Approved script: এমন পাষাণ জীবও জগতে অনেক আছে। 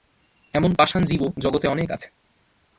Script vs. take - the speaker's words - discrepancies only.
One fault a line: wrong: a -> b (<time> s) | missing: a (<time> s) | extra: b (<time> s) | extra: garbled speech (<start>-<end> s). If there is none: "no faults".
no faults